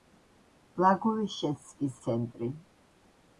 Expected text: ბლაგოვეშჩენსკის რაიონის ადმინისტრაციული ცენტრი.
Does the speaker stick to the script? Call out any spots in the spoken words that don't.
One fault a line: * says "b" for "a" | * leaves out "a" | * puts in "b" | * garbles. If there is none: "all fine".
* leaves out "რაიონის ადმინისტრაციული"